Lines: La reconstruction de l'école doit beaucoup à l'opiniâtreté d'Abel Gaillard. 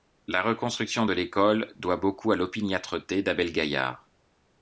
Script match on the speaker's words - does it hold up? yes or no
yes